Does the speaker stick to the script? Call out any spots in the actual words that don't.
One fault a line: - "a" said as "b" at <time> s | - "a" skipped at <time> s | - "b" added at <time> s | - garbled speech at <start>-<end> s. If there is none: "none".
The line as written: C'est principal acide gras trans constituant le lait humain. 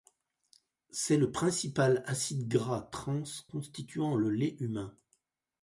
- "le" added at 1.2 s